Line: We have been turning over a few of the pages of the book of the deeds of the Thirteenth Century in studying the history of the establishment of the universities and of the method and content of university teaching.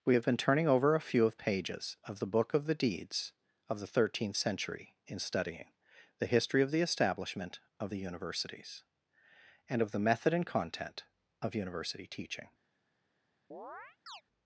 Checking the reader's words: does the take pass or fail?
fail